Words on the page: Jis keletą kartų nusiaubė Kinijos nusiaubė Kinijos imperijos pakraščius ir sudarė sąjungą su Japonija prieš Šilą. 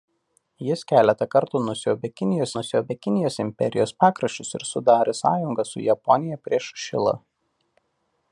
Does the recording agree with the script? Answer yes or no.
yes